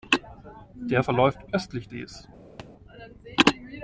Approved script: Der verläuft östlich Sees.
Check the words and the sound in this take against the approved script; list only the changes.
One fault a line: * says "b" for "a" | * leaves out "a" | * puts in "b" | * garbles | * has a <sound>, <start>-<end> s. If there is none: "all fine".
* has a thud, 2.6-2.7 s